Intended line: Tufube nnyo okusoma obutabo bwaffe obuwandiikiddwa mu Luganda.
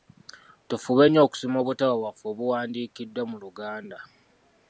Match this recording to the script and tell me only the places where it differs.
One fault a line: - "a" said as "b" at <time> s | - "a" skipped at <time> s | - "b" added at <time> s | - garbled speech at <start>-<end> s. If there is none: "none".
none